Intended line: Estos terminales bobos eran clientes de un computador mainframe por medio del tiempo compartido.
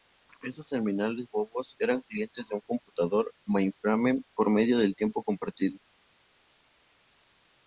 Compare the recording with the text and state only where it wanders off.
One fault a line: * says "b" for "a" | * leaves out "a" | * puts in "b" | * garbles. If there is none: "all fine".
all fine